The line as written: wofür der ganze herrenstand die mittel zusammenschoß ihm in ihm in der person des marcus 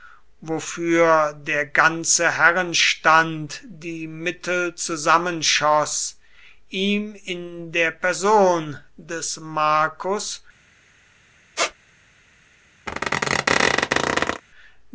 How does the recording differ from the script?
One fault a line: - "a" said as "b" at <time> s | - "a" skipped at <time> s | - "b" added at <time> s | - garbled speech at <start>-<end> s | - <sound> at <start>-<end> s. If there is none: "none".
- "ihm in" skipped at 7.7 s
- squeak at 11.6-11.7 s
- squeak at 12.9-14.4 s